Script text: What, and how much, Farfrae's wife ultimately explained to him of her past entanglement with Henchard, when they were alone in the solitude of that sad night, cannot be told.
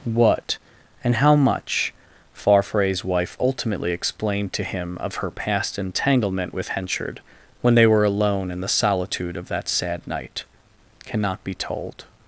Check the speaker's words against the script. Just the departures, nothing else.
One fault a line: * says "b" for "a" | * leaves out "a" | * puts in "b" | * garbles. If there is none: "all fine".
all fine